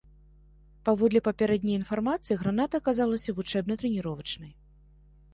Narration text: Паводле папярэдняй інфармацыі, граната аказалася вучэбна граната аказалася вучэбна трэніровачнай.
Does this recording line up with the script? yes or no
no